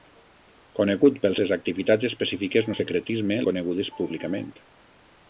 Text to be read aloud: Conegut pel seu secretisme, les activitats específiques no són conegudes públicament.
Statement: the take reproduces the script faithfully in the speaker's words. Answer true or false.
false